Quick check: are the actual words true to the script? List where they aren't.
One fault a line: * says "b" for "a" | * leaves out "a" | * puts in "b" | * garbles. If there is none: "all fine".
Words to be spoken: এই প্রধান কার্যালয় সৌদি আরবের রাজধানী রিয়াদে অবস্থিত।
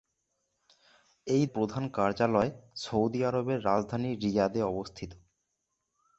all fine